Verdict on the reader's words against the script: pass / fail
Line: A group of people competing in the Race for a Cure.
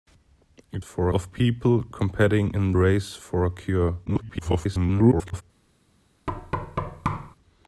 fail